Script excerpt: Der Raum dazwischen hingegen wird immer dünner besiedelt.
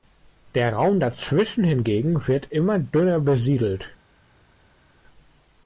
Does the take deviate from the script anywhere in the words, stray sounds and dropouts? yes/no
no